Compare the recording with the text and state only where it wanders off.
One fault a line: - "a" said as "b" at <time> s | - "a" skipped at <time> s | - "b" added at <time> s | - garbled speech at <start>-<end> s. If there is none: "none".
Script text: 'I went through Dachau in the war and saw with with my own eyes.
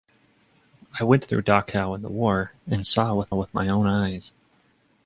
none